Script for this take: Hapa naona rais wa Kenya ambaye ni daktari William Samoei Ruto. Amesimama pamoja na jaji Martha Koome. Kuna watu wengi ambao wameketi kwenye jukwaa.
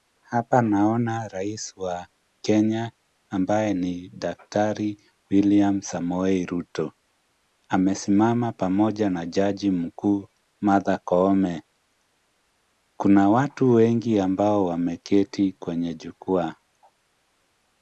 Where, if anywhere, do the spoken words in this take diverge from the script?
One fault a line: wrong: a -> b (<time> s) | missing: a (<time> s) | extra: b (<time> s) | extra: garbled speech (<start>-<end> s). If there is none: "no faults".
extra: mkuu (9.7 s)